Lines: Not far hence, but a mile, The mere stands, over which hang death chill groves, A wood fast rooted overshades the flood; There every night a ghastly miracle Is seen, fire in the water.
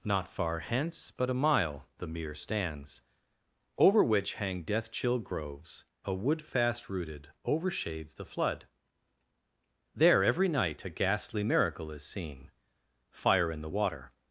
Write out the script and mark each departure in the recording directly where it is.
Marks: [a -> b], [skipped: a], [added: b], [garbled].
Not far hence, but a mile, The mere stands, over which hang death chill groves, A wood fast rooted overshades the flood; There every night a ghastly miracle Is seen, fire in the water.